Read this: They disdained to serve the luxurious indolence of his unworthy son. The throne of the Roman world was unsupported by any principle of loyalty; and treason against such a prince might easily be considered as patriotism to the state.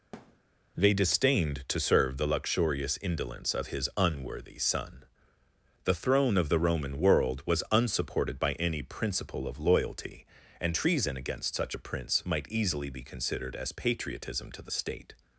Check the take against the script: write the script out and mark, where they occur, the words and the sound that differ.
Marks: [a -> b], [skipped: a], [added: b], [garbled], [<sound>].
[thud] They disdained to serve the luxurious indolence of his unworthy son. The throne of the Roman world was unsupported by any principle of loyalty; and treason against such a prince might easily be considered as patriotism to the state.